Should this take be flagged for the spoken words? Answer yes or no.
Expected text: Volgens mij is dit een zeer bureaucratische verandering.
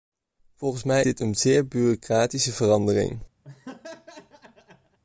yes